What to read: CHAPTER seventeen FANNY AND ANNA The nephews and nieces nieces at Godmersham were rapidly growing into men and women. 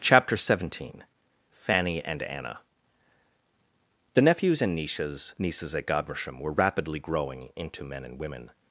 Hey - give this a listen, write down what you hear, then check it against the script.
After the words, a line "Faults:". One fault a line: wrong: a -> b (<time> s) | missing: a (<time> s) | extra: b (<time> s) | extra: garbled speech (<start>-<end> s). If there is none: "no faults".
CHAPTER seventeen FANNY AND ANNA The nephews and nieces nieces at Godmersham were rapidly growing into men and women.
Faults:
no faults